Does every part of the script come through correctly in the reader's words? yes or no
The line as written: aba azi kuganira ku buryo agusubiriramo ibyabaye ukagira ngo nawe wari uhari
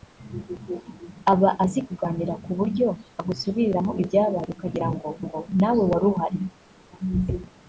no